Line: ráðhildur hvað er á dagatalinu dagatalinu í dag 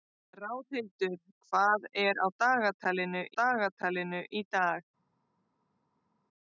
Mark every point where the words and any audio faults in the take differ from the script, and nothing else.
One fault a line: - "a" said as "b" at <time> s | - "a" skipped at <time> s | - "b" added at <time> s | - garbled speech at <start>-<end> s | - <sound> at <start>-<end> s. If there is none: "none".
none